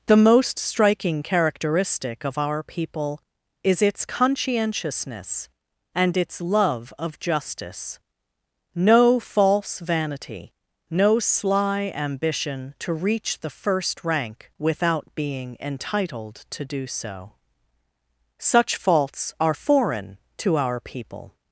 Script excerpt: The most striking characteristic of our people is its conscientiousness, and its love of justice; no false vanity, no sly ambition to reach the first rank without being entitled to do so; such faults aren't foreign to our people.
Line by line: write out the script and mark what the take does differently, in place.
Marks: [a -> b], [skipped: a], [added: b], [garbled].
The most striking characteristic of our people is its conscientiousness, and its love of justice; no false vanity, no sly ambition to reach the first rank without being entitled to do so; such faults [aren't -> are] foreign to our people.